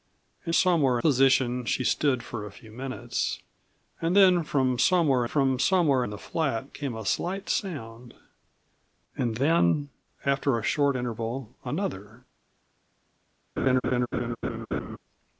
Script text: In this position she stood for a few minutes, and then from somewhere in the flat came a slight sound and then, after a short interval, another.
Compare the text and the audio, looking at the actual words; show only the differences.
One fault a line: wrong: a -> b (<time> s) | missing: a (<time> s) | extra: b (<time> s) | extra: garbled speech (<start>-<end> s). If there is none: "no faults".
wrong: this -> somewhere (0.5 s)
extra: from somewhere (5.2 s)